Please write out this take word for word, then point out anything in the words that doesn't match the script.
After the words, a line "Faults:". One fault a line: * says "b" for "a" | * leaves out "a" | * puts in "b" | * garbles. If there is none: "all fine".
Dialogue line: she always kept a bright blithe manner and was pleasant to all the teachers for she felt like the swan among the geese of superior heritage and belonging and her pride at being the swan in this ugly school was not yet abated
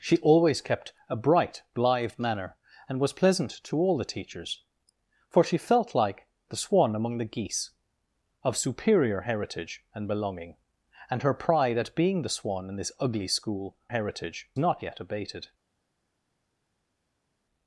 she always kept a bright blithe manner and was pleasant to all the teachers for she felt like the swan among the geese of superior heritage and belonging and her pride at being the swan in this ugly school heritage not yet abated
Faults:
* says "heritage" for "was"